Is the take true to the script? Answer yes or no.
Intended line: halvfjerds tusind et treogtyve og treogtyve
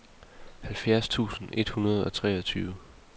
no